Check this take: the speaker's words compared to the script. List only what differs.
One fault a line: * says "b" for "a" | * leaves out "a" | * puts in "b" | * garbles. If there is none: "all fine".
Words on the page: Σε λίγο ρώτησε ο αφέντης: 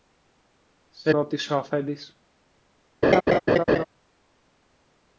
* leaves out "λίγο"